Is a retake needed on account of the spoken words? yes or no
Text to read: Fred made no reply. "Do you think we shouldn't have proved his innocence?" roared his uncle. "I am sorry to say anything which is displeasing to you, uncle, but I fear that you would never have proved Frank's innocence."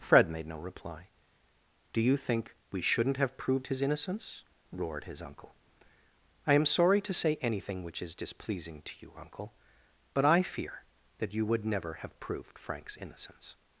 no